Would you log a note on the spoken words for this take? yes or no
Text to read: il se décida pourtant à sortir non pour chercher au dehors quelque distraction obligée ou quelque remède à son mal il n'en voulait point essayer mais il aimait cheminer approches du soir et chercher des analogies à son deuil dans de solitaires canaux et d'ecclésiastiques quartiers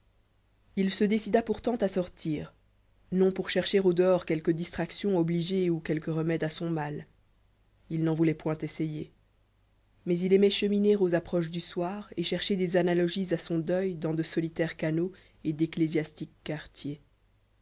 yes